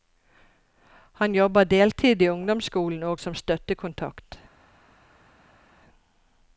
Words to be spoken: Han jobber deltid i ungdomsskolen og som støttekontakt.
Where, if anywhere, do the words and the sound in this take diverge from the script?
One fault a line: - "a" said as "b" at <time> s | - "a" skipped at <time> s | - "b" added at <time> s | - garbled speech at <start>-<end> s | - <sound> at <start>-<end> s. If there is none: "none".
none